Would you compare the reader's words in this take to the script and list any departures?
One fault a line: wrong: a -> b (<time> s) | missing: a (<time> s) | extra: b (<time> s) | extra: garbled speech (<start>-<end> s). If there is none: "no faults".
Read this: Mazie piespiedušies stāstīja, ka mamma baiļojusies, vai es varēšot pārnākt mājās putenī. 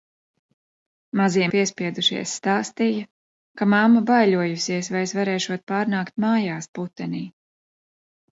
no faults